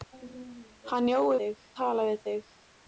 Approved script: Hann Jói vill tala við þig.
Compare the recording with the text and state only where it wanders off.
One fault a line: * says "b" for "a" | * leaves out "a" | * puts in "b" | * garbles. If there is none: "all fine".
* says "þig" for "vill"